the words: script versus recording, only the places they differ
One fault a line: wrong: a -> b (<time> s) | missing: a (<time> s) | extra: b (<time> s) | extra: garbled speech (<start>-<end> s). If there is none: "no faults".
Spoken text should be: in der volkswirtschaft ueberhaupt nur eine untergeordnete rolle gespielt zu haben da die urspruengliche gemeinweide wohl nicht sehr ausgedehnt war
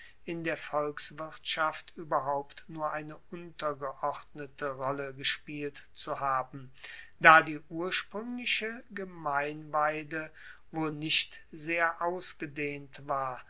no faults